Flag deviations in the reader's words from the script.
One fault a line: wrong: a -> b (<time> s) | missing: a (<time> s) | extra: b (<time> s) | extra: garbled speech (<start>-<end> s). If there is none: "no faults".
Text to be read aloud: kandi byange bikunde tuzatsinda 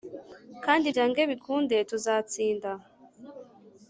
no faults